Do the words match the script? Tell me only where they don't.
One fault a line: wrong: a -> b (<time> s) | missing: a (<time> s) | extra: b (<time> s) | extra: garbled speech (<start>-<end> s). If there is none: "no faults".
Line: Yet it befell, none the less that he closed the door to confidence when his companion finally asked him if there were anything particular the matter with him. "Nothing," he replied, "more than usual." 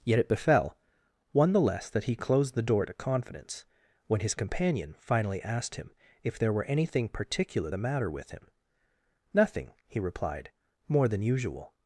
wrong: none -> one (1.3 s)